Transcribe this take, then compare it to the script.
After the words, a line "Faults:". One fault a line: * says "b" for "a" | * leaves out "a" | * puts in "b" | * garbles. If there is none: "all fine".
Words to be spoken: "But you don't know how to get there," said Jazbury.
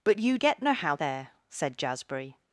"But you get know how there," said Jazbury.
Faults:
* says "get" for "don't"
* leaves out "to get"